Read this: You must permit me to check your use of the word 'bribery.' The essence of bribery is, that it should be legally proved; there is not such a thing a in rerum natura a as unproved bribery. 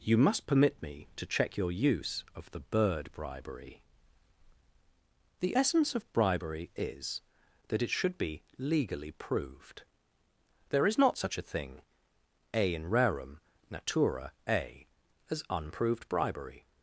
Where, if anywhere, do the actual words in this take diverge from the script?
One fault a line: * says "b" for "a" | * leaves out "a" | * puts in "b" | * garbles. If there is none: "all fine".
* says "bird" for "word"